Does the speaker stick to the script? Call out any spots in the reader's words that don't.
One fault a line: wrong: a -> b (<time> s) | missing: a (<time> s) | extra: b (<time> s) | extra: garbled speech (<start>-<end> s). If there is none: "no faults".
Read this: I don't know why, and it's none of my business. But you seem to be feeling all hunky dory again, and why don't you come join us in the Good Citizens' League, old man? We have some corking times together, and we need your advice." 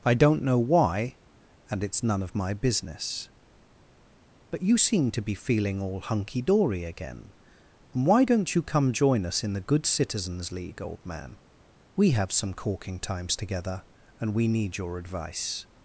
no faults